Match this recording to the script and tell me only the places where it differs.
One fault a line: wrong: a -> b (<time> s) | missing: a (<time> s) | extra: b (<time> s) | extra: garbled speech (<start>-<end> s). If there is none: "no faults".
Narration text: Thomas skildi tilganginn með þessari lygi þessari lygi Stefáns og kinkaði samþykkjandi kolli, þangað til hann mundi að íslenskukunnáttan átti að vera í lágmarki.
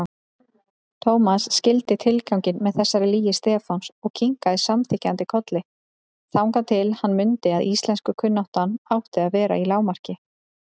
missing: þessari lygi (3.3 s)